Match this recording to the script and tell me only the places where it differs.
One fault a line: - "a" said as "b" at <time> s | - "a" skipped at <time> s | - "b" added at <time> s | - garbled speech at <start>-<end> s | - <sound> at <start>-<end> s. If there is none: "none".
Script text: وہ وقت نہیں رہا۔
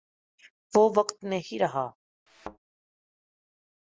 - thud at 2.3-2.6 s